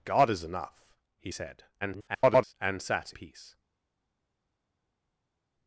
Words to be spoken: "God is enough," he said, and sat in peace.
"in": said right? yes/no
no